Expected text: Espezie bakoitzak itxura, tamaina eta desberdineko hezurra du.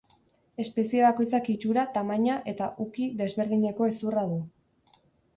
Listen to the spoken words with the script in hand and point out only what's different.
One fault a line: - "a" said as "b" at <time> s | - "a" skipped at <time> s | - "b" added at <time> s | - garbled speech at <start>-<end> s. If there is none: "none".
- "uki" added at 2.8 s